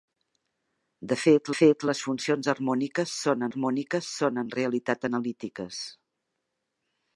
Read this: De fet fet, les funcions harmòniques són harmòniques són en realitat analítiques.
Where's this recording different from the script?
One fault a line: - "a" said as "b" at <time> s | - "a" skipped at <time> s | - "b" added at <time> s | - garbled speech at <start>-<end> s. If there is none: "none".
none